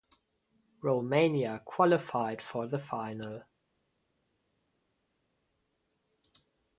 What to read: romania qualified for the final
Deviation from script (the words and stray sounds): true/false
false